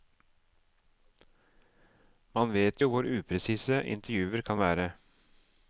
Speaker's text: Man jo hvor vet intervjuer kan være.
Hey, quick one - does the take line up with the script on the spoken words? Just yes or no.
no